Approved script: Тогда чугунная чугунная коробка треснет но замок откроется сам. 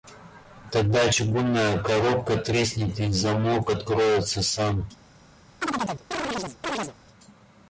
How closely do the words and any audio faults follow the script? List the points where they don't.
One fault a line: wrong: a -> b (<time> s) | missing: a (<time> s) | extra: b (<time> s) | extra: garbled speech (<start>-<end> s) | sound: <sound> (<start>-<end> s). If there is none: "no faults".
missing: чугунная (1.8 s)
wrong: но -> и (3.0 s)
sound: chirp (5.6-6.9 s)